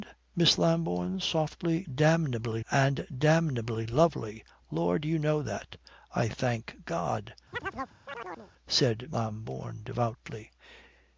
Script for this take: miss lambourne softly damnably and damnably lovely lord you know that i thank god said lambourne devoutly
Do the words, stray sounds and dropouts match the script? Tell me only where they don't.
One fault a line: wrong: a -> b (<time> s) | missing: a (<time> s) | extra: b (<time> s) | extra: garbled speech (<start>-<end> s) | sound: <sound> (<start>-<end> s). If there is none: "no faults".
sound: chirp (7.5-8.5 s)